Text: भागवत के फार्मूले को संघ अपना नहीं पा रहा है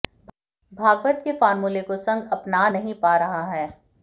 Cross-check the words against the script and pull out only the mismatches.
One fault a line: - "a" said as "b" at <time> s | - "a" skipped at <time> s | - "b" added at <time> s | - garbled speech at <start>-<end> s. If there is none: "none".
none